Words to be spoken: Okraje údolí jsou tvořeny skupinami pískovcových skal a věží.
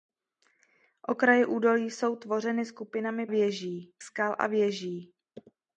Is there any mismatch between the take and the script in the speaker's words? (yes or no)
yes